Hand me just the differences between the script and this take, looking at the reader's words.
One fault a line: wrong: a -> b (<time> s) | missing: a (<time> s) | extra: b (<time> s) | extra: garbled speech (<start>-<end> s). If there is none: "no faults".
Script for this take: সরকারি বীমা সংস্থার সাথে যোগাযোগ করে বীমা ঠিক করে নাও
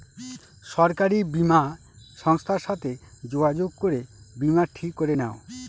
no faults